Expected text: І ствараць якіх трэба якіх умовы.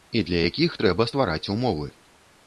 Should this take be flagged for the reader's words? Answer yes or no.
yes